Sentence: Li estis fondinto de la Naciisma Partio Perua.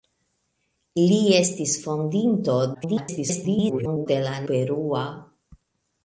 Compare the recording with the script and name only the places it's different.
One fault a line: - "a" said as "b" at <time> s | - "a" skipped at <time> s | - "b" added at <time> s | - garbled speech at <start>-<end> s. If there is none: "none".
- garbled speech at 2.7-4.1 s
- "Naciisma Partio" skipped at 4.3 s